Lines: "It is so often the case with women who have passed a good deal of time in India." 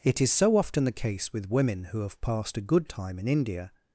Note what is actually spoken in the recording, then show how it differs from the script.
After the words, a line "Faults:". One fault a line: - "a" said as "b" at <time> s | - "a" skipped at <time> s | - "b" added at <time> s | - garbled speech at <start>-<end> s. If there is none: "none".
"It is so often the case with women who have passed a good time in India."
Faults:
- "deal of" skipped at 2.9 s